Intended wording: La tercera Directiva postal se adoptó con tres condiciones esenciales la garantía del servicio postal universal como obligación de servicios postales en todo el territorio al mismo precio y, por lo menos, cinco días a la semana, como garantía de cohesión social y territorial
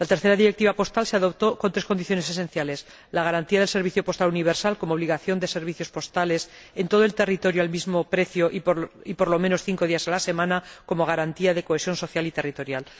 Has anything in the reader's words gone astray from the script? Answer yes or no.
no